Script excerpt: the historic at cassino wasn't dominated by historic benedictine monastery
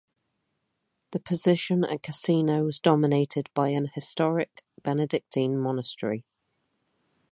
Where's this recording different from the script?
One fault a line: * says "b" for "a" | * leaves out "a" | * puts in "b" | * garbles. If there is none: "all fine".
* says "position" for "historic"
* says "was" for "wasn't"
* puts in "an"